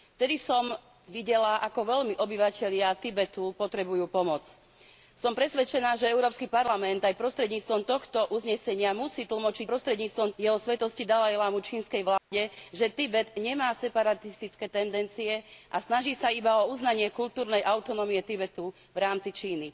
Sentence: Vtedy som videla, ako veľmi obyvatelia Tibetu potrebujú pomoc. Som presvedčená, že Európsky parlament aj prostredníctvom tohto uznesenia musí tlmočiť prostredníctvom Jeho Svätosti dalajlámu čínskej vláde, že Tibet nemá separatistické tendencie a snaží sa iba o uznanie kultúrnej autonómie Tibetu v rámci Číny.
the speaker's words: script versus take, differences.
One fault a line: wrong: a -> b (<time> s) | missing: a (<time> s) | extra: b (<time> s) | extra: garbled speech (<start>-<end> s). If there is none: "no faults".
no faults